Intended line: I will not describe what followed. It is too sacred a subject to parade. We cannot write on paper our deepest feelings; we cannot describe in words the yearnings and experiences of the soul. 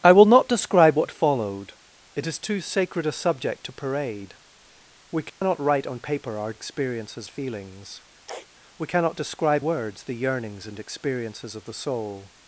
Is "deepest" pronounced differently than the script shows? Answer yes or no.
yes